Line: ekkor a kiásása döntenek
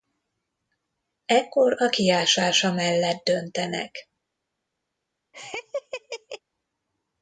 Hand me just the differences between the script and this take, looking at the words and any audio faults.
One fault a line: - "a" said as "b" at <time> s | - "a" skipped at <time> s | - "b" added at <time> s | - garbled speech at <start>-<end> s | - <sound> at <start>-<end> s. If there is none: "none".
- "mellett" added at 2.7 s
- laugh at 5.3-6.4 s